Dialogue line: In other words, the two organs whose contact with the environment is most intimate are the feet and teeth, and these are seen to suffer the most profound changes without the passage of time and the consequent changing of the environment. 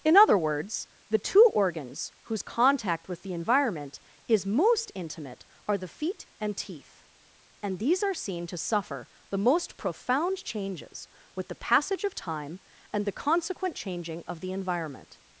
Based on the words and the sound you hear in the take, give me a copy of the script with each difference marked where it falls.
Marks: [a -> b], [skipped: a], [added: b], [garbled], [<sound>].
In other words, the two organs whose contact with the environment is most intimate are the feet and teeth, and these are seen to suffer the most profound changes [without -> with] the passage of time and the consequent changing of the environment.